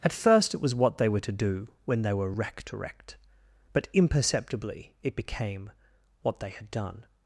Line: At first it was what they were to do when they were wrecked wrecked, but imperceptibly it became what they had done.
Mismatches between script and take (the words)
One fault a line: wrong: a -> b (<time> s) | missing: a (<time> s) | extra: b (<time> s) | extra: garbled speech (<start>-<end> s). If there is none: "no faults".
no faults